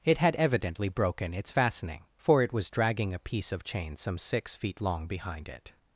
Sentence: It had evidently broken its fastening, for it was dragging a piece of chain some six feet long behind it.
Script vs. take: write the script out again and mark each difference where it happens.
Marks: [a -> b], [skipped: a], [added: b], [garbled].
It had evidently broken its fastening, for it was dragging a piece of chain some six feet long behind it.